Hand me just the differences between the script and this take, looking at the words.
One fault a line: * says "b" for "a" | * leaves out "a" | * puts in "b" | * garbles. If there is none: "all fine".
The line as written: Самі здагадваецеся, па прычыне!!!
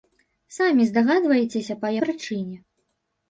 all fine